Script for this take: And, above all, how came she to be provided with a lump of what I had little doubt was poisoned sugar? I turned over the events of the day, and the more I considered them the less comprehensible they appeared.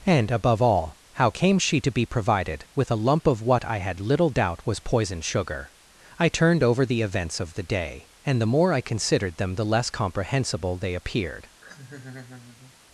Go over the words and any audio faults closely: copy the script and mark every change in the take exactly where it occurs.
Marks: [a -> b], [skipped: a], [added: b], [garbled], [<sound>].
And, above all, how came she to be provided with a lump of what I had little doubt was poisoned sugar? I turned over the events of the day, and the more I considered them the less comprehensible they appeared. [laugh]